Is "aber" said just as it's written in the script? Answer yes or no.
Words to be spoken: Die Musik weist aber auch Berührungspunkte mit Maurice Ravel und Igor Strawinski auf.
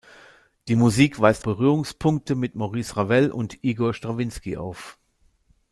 no